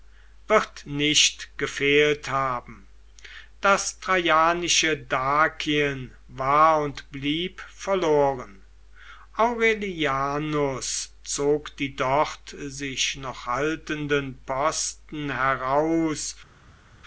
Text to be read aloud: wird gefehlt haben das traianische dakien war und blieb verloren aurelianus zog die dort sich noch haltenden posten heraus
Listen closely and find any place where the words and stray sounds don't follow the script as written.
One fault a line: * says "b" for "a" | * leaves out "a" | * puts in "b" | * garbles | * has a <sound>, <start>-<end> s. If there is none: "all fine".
* puts in "nicht"